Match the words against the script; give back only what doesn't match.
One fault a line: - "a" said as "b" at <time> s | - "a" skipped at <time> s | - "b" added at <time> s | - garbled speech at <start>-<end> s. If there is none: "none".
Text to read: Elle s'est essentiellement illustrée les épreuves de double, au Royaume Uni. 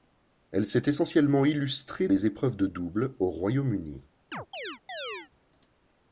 none